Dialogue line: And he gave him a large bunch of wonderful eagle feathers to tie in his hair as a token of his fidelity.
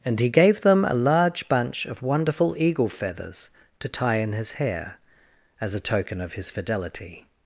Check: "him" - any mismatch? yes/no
yes